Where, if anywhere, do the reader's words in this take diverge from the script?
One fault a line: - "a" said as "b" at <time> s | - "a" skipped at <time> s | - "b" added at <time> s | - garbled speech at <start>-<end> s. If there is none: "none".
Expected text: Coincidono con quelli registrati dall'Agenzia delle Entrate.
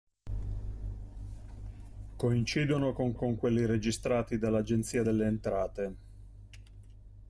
- "con" added at 3.1 s